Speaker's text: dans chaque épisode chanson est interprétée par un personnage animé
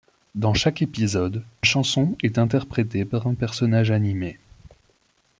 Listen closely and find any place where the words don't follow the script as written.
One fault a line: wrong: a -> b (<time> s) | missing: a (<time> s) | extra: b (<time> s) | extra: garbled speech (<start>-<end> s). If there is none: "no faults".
no faults